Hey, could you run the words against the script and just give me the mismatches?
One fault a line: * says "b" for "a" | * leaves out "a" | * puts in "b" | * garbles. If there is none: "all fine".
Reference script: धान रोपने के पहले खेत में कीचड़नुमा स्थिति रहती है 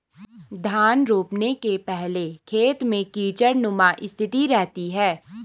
all fine